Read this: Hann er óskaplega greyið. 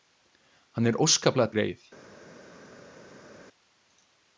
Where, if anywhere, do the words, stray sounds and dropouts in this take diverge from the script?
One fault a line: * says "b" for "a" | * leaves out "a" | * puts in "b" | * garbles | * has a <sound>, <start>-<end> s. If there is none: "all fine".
all fine